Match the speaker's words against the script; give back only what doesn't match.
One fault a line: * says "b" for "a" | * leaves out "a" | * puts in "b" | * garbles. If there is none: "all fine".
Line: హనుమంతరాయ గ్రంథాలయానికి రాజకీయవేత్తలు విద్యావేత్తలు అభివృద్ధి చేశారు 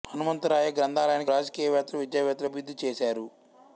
all fine